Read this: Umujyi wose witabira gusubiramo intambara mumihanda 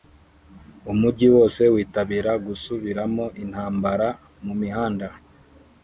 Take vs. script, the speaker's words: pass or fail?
pass